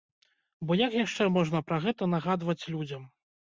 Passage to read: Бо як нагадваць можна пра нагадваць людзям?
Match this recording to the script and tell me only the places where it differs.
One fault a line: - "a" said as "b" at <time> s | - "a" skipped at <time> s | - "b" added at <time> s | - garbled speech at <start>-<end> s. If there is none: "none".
- "нагадваць" said as "яшчэ" at 1.0 s
- "гэта" added at 1.9 s